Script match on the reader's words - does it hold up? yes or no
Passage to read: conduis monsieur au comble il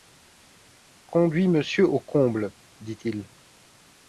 no